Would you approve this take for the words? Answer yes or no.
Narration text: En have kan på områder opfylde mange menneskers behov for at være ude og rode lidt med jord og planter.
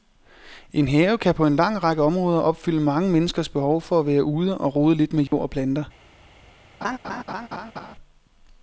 no